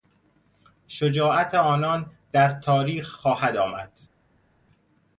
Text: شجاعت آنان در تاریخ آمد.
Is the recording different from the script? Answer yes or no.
yes